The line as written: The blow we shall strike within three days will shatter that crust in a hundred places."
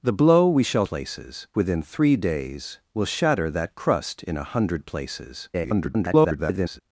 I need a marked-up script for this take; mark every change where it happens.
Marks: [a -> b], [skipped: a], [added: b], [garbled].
The blow we shall [strike -> places] within three days will shatter that crust in a hundred places." [garbled]